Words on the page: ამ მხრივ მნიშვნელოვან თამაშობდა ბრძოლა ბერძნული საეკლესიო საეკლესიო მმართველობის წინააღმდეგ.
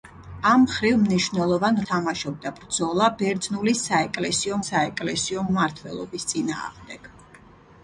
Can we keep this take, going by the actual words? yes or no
yes